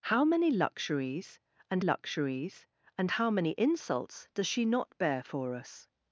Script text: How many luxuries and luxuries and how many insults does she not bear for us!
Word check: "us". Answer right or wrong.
right